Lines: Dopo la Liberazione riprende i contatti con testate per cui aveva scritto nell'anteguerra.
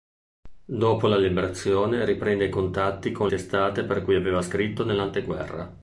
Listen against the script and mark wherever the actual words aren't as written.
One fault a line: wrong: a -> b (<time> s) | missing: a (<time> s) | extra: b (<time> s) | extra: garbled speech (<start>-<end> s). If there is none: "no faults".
no faults